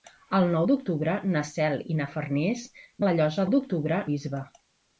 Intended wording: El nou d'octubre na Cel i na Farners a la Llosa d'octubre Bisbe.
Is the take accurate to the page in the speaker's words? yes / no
yes